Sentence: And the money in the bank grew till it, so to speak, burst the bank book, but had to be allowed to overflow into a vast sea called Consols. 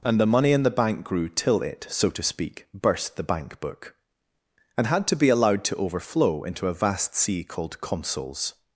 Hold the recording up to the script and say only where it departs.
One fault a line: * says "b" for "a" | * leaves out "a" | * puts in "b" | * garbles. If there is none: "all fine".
* says "and" for "but"